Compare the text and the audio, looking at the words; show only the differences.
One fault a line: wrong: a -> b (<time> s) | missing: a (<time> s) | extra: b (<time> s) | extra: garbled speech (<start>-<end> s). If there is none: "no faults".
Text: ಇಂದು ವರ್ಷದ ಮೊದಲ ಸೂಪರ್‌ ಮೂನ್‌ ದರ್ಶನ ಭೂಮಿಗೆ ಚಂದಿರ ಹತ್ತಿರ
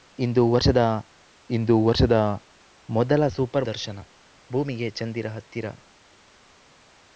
extra: ಇಂದು ವರ್ಷದ (1.5 s)
missing: ಮೂನ್ (3.7 s)